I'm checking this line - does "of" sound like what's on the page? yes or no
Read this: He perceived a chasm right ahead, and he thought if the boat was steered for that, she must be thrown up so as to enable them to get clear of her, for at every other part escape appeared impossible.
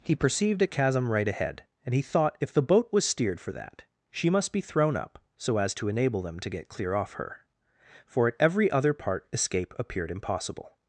no